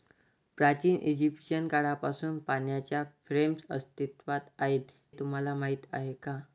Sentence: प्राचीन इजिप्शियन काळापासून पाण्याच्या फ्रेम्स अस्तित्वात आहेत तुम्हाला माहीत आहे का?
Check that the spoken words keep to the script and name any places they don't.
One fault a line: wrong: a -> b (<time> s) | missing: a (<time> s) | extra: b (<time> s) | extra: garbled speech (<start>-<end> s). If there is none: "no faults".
no faults